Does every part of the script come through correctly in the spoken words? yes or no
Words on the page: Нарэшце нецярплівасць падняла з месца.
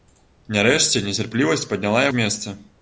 yes